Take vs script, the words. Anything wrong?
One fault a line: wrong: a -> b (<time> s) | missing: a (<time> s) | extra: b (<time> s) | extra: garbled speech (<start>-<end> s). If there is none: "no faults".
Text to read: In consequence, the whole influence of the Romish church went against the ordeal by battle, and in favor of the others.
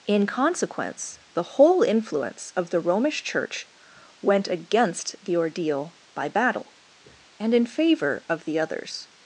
no faults